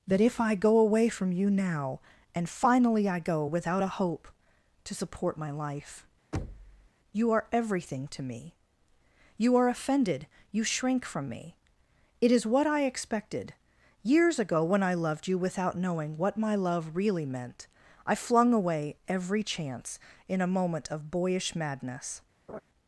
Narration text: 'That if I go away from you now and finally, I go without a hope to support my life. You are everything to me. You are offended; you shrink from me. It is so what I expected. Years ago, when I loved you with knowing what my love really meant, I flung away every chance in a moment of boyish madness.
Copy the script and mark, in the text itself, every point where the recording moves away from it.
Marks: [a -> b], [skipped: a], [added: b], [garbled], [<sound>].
'That if I go away from you now and finally, I go without a hope to support my life. [thud] You are everything to me. You are offended; you shrink from me. It is [skipped: so] what I expected. Years ago, when I loved you [with -> without] knowing what my love really meant, I flung away every chance in a moment of boyish madness. [laugh]